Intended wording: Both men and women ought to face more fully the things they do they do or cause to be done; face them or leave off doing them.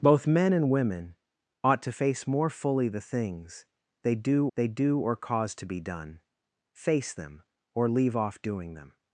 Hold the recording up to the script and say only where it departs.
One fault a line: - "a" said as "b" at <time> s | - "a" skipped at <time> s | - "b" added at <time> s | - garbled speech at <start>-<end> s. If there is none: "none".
none